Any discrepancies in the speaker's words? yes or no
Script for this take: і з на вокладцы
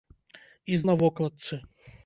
no